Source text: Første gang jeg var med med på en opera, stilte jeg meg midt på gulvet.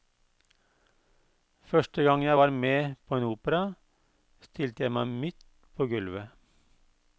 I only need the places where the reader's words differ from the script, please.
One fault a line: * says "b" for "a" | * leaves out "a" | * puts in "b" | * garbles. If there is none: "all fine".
* leaves out "med"